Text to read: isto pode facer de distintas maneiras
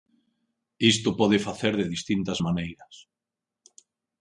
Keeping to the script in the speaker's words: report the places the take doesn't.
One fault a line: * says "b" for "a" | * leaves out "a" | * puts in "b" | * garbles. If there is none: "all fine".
all fine